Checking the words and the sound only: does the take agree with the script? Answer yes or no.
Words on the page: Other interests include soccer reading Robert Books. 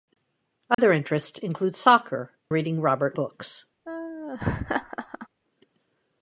no